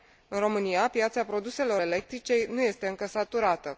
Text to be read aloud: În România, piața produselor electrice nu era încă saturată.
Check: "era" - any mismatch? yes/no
yes